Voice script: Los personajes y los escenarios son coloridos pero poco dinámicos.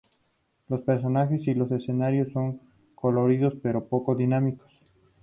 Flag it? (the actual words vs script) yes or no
no